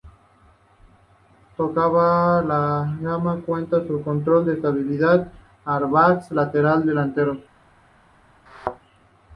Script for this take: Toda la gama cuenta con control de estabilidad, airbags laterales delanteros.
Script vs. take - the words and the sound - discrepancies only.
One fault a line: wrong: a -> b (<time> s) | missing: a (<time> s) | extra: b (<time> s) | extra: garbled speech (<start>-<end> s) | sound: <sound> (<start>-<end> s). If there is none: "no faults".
sound: thud (8.5-8.8 s)